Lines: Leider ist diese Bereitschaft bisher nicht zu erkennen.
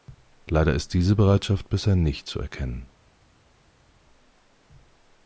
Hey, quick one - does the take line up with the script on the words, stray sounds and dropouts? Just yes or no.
yes